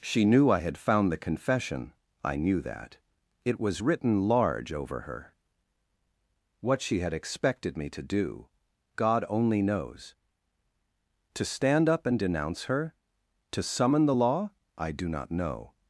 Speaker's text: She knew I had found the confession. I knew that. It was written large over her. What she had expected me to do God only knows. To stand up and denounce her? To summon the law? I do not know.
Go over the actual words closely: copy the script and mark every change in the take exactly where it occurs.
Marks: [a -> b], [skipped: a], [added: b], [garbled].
She knew I had found the confession. I knew that. It was written large over her. What she had expected me to do God only knows. To stand up and denounce her? To summon the law? I do not know.